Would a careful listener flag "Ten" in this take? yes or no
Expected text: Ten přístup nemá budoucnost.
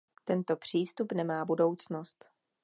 yes